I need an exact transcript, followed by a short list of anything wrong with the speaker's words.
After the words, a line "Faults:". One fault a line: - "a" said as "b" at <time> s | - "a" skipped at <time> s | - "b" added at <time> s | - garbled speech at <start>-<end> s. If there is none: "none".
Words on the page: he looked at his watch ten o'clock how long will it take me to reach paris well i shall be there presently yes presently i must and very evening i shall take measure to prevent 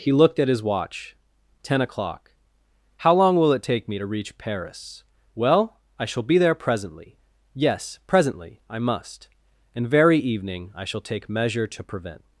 he looked at his watch ten o'clock how long will it take me to reach paris well i shall be there presently yes presently i must and very evening i shall take measure to prevent
Faults:
none